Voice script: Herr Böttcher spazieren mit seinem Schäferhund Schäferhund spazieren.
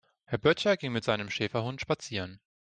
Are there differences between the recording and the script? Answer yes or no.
yes